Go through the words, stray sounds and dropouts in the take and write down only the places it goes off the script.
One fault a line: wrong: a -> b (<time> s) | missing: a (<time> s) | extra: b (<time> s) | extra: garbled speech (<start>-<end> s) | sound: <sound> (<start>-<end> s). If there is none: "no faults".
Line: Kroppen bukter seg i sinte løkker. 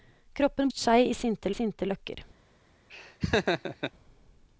missing: bukter (0.7 s)
extra: sinte (1.5 s)
sound: laugh (2.9-3.9 s)